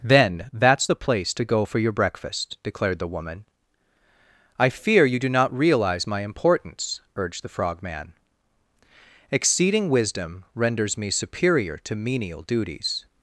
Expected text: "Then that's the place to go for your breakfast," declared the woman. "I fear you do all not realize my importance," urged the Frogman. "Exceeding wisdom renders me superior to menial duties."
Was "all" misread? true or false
true